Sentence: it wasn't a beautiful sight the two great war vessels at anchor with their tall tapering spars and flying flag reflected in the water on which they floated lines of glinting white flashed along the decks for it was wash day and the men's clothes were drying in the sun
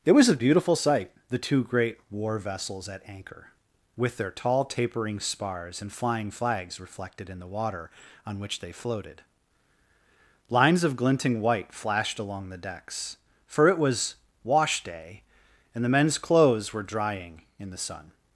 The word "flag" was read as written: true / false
false